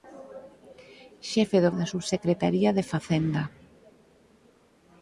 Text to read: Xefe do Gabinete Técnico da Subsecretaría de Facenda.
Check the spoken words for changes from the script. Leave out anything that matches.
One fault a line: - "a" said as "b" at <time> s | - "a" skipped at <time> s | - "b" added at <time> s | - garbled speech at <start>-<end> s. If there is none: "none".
- "Gabinete Técnico" skipped at 1.7 s